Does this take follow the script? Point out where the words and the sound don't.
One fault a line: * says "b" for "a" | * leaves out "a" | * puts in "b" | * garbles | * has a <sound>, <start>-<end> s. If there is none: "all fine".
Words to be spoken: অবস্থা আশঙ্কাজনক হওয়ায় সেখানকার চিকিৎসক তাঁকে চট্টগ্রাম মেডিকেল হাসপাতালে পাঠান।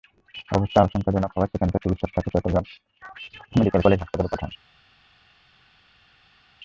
* puts in "কলেজ"